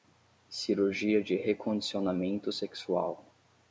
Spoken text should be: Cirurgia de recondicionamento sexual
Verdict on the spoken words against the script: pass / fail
pass